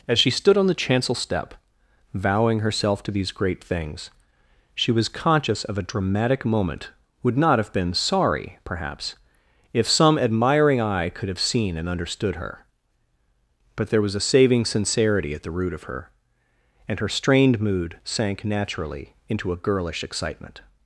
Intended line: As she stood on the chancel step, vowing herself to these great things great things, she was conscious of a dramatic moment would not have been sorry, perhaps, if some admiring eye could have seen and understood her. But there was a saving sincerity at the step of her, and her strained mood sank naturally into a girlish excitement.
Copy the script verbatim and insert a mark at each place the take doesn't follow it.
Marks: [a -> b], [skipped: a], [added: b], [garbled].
As she stood on the chancel step, vowing herself to these great things [skipped: great things,] she was conscious of a dramatic moment would not have been sorry, perhaps, if some admiring eye could have seen and understood her. But there was a saving sincerity at the [step -> root] of her, and her strained mood sank naturally into a girlish excitement.